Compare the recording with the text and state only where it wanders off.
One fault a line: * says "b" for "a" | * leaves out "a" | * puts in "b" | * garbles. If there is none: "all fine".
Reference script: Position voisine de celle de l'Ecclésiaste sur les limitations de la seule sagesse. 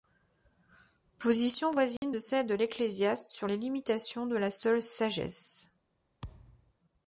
all fine